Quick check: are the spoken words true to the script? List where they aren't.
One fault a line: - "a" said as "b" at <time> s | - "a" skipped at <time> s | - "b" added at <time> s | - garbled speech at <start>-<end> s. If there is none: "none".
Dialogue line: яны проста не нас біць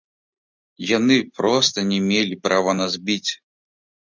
- "мелі права" added at 2.1 s